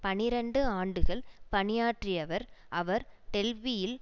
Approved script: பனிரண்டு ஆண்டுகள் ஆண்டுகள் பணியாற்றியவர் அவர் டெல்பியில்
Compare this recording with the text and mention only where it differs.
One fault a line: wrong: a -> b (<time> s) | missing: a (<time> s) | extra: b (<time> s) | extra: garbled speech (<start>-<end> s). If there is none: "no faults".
missing: ஆண்டுகள் (1.2 s)